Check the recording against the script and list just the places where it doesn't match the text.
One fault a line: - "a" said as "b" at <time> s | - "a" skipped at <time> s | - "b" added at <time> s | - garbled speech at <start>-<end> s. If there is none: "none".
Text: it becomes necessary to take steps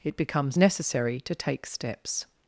none